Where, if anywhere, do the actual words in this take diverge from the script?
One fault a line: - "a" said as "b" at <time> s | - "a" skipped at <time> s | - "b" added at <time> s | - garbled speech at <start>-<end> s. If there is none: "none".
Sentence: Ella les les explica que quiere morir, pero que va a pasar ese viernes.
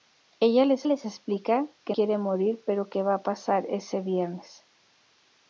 none